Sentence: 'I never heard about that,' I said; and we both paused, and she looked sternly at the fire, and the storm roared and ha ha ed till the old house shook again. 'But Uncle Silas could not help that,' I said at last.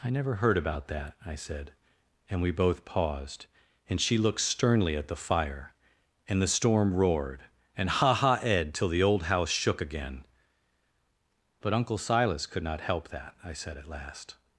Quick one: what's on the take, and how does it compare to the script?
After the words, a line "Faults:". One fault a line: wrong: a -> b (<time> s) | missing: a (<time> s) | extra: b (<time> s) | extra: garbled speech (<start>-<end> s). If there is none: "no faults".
'I never heard about that,' I said; and we both paused, and she looked sternly at the fire, and the storm roared and ha ha ed till the old house shook again. 'But Uncle Silas could not help that,' I said at last.
Faults:
no faults